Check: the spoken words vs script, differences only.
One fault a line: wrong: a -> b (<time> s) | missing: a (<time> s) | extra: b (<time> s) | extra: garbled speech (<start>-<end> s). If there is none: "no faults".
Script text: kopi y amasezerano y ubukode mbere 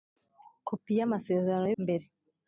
missing: ubukode (1.8 s)